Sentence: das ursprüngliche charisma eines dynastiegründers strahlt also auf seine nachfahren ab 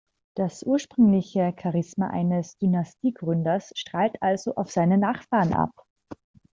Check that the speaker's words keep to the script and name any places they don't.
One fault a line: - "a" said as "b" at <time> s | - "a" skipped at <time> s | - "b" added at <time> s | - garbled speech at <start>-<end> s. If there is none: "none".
none